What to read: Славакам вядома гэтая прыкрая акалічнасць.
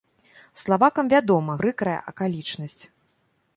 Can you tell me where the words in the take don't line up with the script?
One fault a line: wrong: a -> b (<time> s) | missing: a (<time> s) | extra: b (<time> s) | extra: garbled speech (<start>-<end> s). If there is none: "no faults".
missing: гэтая (1.6 s)